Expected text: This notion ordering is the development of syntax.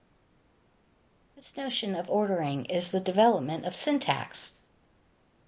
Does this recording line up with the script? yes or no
no